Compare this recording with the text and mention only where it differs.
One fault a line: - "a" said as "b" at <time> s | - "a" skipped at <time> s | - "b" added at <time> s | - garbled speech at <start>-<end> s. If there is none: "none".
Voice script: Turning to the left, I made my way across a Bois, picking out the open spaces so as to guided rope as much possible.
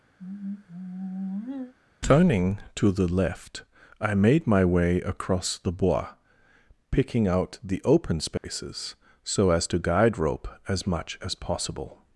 - "a" said as "the" at 5.6 s
- "guided" said as "guide" at 9.8 s
- "as" added at 11.2 s